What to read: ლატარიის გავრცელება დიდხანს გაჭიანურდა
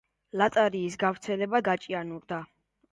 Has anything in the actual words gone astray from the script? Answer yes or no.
yes